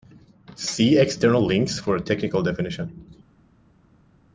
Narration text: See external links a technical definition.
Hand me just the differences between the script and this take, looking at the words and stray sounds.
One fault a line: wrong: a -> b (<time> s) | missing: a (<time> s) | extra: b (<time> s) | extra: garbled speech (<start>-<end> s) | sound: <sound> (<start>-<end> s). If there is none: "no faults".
extra: for (1.8 s)